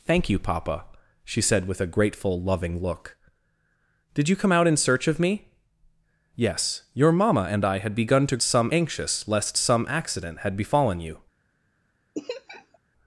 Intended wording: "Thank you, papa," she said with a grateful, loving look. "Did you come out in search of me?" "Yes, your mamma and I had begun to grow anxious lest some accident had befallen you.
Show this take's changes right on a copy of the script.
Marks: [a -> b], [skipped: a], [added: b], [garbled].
"Thank you, papa," she said with a grateful, loving look. "Did you come out in search of me?" "Yes, your mamma and I had begun to [grow -> some] anxious lest some accident had befallen you.